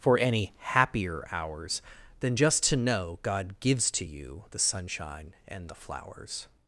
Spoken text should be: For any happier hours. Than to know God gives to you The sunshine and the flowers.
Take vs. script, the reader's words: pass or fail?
fail